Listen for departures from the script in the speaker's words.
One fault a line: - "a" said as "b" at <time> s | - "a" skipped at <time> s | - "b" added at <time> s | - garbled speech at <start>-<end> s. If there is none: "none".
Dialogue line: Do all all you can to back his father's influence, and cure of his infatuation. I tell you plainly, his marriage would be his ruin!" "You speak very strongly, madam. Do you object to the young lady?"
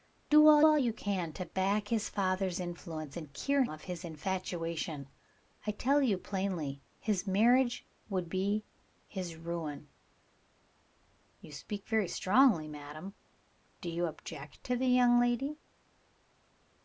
none